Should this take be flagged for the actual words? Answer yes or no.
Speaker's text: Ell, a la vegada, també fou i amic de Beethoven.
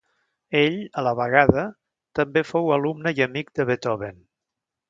yes